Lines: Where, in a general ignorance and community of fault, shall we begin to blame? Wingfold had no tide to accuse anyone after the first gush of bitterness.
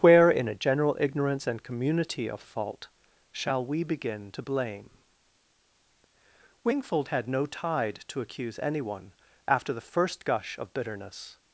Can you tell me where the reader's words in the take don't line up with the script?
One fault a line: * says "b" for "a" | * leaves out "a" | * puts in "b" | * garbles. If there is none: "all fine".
all fine